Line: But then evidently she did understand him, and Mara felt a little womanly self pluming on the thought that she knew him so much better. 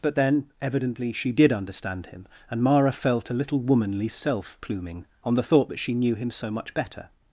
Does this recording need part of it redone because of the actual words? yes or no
no